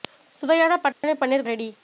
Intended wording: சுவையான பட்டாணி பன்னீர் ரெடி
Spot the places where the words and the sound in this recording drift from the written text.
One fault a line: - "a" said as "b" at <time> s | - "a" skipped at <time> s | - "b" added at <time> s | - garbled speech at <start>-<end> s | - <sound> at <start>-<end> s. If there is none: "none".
- dropout at 0.9-1.0 s